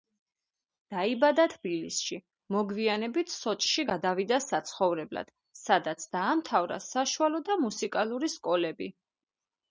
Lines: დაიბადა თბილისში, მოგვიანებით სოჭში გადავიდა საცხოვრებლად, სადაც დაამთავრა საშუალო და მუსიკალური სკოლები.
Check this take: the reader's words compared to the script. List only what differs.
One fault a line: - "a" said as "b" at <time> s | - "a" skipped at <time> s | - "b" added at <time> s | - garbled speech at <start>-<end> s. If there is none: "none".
none